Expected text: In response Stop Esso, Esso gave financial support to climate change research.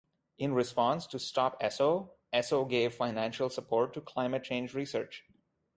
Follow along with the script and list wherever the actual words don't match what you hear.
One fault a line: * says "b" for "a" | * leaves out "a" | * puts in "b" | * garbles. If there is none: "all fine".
* puts in "to"